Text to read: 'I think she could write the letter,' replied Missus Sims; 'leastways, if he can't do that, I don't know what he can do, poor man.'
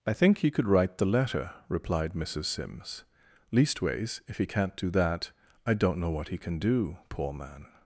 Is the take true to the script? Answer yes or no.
no